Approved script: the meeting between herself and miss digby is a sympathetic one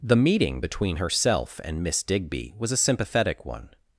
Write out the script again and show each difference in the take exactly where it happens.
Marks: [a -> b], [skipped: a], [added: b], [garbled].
the meeting between herself and miss digby [is -> was] a sympathetic one